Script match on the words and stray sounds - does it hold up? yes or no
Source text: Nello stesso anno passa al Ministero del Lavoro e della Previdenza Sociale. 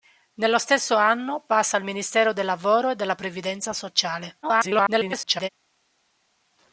no